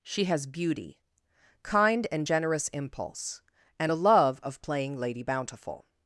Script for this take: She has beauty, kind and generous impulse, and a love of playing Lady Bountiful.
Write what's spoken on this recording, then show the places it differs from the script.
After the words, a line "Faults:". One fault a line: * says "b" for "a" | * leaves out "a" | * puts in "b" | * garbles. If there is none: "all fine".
She has beauty, kind and generous impulse, and a love of playing Lady Bountiful.
Faults:
all fine